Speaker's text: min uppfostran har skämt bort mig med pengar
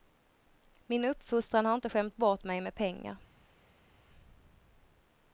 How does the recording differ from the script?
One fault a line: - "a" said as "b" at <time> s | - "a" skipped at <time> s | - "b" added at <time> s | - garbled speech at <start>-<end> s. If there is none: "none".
- "inte" added at 1.8 s